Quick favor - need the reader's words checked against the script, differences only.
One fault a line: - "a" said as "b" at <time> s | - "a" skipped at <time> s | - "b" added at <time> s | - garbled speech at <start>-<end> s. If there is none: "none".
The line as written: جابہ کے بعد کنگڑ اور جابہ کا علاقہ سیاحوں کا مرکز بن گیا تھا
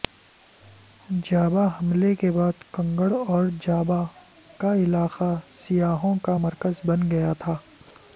- "حملے" added at 1.8 s